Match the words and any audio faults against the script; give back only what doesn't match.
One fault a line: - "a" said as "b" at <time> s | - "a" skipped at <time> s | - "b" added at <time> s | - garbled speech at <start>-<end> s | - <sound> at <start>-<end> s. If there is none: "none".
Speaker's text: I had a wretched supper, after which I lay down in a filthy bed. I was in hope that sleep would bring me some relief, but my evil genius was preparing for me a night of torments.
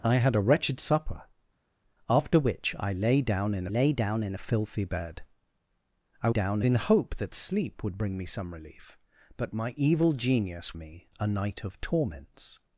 - "lay down in" added at 3.7 s
- "was" said as "down" at 6.3 s
- "was preparing for" skipped at 10.7 s